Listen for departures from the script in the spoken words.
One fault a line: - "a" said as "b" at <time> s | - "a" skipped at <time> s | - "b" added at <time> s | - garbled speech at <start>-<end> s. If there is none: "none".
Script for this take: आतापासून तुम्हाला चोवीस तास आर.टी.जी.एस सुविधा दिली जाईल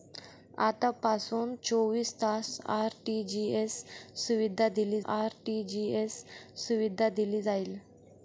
- "तुम्हाला" skipped at 1.5 s
- "आर.टी.जी.एस सुविधा दिली" added at 5.1 s